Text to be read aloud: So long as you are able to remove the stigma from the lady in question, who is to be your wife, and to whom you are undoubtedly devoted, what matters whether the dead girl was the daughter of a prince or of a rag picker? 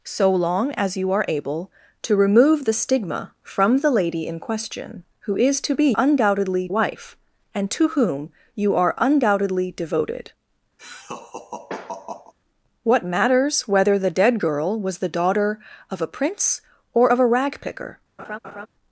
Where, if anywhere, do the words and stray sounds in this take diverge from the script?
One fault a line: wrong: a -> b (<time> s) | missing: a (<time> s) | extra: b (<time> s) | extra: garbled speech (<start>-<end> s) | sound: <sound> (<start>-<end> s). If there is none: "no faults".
wrong: your -> undoubtedly (6.0 s)
sound: laugh (10.8-12.3 s)
sound: laugh (18.2-18.7 s)